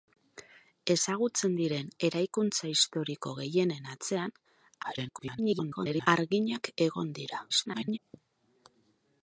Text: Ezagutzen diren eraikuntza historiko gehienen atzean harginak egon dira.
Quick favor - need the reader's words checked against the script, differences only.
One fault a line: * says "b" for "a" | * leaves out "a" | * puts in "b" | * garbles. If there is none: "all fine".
* garbles
* garbles